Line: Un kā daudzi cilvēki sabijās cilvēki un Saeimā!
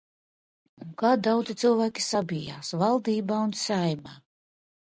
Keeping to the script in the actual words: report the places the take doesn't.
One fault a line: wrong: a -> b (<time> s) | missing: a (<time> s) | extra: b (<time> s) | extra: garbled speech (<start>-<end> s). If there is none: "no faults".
wrong: cilvēki -> valdībā (2.8 s)